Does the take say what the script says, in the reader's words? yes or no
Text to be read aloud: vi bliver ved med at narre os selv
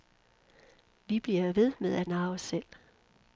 yes